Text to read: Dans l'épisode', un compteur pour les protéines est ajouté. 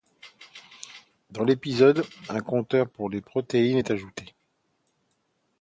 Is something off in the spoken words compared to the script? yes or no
no